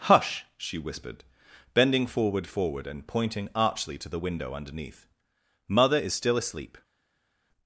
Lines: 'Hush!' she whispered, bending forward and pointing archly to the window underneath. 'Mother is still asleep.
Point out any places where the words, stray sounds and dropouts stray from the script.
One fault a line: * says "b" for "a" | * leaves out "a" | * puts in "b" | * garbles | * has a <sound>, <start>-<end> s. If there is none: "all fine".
* puts in "forward"